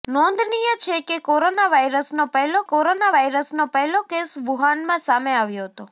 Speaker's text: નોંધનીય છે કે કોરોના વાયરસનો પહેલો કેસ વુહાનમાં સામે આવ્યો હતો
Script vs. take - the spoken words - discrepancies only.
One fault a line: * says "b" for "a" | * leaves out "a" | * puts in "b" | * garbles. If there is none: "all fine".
* puts in "કોરોના વાયરસનો પહેલો"